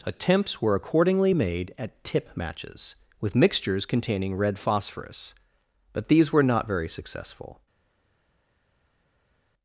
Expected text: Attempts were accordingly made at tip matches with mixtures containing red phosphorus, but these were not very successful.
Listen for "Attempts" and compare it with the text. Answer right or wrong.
right